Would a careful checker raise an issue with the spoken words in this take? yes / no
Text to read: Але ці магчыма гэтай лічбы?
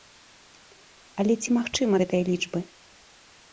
no